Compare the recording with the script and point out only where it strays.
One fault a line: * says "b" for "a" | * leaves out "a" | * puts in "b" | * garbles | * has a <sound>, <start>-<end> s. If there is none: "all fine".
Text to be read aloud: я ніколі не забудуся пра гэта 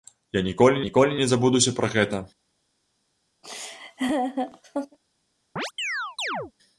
* puts in "ніколі"
* has a laugh, 3.4-5.0 s
* has a chirp, 5.6-6.5 s